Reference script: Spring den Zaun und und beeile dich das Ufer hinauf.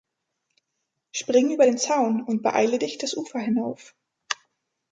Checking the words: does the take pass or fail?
fail